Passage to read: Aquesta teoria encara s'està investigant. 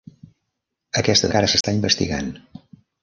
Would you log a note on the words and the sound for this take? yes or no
yes